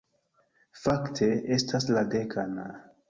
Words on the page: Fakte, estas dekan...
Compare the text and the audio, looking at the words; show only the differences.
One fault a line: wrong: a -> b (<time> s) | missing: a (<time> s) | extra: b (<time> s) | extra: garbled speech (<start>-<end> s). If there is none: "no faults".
extra: la (1.9 s)